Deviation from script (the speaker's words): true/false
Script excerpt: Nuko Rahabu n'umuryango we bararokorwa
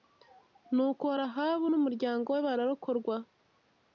false